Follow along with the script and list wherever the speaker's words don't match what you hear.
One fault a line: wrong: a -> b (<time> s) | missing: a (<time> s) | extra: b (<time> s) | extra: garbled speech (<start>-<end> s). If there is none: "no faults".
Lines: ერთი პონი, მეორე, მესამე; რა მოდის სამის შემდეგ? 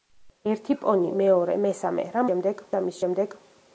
wrong: მოდის -> შემდეგ (2.3 s)